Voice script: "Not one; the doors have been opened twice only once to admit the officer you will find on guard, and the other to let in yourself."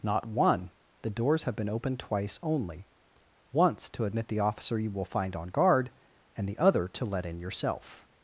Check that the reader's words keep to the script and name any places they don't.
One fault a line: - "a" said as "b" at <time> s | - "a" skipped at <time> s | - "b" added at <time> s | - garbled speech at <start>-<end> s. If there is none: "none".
none